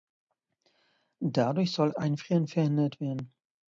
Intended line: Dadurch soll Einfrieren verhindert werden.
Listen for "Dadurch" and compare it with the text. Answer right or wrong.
right